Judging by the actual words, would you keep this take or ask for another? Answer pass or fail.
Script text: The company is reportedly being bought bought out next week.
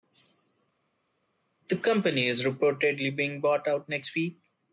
fail